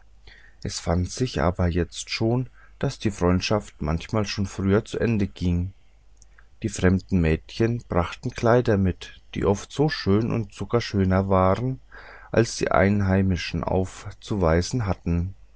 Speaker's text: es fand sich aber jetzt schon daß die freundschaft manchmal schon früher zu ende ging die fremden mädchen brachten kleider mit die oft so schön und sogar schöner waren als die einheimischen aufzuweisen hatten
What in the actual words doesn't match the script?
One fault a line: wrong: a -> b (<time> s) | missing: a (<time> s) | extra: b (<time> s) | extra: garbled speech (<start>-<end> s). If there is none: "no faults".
no faults